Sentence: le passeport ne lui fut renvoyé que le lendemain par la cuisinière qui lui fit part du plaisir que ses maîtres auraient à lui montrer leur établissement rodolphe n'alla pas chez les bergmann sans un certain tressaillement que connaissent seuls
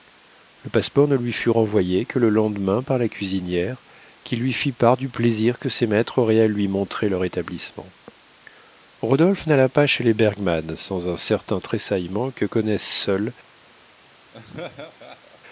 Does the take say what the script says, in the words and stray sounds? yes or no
no